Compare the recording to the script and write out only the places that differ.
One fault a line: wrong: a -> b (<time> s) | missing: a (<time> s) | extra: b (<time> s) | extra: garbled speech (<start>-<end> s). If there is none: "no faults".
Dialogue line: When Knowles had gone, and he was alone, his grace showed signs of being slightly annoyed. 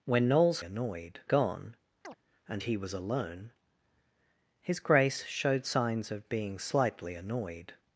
wrong: had -> annoyed (0.6 s)